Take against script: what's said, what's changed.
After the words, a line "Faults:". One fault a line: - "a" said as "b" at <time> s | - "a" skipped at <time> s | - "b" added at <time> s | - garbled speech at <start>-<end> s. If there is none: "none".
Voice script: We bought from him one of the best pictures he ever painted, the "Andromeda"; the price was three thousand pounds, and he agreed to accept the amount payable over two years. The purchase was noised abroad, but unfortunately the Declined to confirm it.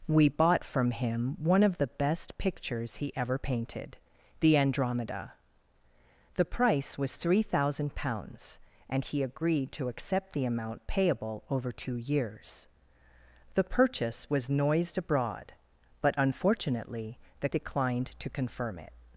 We bought from him one of the best pictures he ever painted, the "Andromeda"; the price was three thousand pounds, and he agreed to accept the amount payable over two years. The purchase was noised abroad, but unfortunately the Declined to confirm it.
Faults:
none